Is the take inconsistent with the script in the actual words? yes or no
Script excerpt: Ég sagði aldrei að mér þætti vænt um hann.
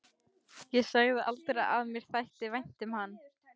no